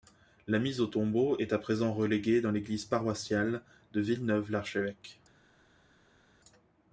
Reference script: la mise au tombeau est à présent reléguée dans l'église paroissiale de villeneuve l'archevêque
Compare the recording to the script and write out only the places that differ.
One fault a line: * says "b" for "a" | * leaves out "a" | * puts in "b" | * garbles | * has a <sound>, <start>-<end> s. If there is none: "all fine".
all fine